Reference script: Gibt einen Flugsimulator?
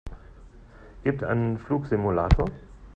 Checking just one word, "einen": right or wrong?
right